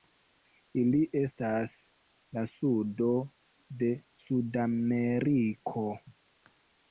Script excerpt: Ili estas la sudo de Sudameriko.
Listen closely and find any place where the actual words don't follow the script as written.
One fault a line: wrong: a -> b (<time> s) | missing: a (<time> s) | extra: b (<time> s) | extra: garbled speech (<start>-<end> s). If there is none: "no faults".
no faults